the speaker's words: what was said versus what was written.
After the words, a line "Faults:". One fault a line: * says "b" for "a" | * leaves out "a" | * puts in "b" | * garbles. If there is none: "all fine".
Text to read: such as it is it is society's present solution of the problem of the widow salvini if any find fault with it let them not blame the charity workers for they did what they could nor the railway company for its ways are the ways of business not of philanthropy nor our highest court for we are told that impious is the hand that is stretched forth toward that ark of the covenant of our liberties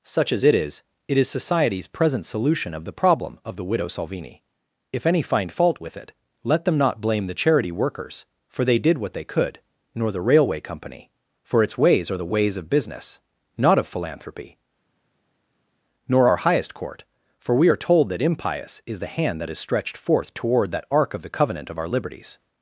such as it is it is society's present solution of the problem of the widow salvini if any find fault with it let them not blame the charity workers for they did what they could nor the railway company for its ways are the ways of business not of philanthropy nor our highest court for we are told that impious is the hand that is stretched forth toward that ark of the covenant of our liberties
Faults:
all fine